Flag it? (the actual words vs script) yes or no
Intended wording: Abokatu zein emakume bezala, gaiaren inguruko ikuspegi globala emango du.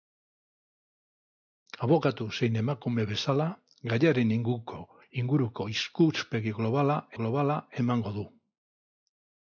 yes